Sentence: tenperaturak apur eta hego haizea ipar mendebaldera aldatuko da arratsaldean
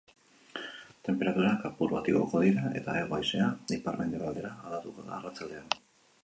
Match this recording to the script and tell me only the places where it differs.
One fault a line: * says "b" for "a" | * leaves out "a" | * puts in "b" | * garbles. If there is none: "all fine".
* puts in "bat igoko dira"